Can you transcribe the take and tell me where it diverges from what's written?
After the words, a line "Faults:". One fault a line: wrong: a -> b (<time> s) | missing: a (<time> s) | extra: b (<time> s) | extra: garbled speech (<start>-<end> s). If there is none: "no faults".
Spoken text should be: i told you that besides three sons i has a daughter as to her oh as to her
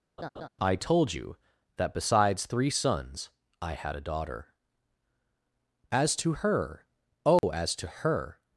i told you that besides three sons i had a daughter as to her oh as to her
Faults:
wrong: has -> had (3.7 s)